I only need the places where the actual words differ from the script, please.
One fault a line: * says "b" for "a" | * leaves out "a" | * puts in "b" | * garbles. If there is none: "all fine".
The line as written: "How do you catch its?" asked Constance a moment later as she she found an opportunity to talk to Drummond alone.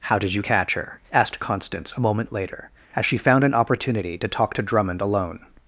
* says "did" for "do"
* says "her" for "its"
* leaves out "she"